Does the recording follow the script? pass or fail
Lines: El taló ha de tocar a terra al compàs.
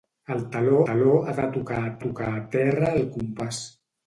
fail